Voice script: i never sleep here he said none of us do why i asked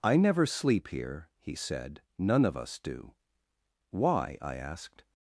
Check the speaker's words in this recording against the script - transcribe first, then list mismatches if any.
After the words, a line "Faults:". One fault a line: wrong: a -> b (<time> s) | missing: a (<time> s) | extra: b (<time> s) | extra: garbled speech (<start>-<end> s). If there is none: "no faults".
i never sleep here he said none of us do why i asked
Faults:
no faults